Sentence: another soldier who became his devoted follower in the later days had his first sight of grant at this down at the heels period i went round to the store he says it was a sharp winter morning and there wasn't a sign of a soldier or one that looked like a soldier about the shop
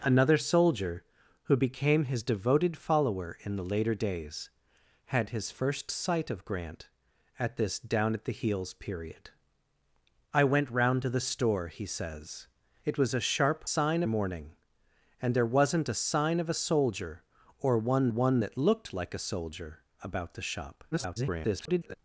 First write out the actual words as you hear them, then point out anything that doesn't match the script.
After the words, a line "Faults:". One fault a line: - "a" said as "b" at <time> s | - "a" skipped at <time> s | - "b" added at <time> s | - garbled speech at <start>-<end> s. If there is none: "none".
another soldier who became his devoted follower in the later days had his first sight of grant at this down at the heels period i went round to the store he says it was a sharp sign morning and there wasn't a sign of a soldier or one one that looked like a soldier about the shop [garbled]
Faults:
- "winter" said as "sign" at 13.6 s
- "one" added at 18.1 s
- garbled speech at 20.9-21.9 s